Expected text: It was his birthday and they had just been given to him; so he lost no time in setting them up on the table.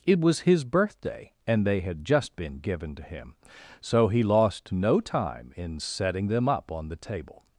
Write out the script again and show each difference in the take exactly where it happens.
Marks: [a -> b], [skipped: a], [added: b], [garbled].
It was his birthday and they had just been given to him; so he lost no time in setting them up on the table.